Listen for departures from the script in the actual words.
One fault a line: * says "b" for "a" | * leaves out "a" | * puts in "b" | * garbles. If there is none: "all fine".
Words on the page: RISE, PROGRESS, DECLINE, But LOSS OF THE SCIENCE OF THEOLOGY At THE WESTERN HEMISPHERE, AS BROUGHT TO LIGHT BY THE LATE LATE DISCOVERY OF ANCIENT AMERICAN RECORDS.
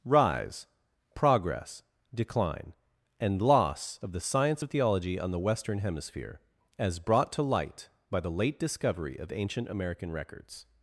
* says "AND" for "But"
* says "ON" for "At"
* leaves out "LATE"